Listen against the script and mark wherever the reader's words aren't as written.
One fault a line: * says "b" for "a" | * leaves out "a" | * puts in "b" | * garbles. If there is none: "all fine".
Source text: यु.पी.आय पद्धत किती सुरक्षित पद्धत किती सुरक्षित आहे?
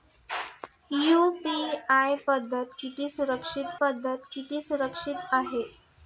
all fine